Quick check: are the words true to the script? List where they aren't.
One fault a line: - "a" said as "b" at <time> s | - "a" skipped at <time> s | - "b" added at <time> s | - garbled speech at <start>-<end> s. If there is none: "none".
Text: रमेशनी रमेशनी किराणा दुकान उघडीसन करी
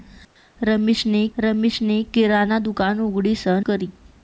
none